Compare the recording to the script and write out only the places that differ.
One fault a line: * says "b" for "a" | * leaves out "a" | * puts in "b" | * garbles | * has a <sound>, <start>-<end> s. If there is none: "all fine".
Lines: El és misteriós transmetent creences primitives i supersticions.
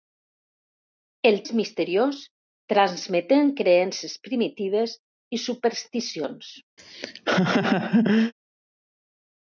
* has a laugh, 6.8-8.3 s